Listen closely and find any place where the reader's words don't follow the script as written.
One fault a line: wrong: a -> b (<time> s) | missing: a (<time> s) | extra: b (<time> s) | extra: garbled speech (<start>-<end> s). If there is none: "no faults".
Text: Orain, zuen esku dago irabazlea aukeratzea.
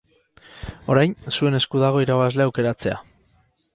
no faults